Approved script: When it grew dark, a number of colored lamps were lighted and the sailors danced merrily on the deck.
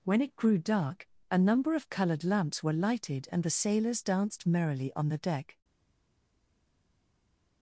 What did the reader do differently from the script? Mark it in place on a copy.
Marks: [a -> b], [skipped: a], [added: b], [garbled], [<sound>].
When it grew dark, a number of colored lamps were lighted and the sailors danced merrily on the deck.